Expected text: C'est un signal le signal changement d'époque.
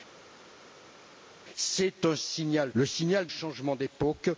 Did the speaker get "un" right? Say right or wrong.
right